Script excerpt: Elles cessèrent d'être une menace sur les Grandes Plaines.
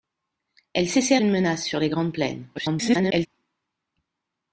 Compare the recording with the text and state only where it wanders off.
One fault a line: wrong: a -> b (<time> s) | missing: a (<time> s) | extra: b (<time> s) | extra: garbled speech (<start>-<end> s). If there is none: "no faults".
missing: d'être (1.2 s)
extra: garbled speech (2.5-3.3 s)